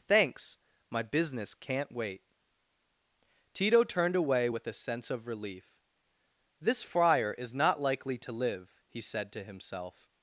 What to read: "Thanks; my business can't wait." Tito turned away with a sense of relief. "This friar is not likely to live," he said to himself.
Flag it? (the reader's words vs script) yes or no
no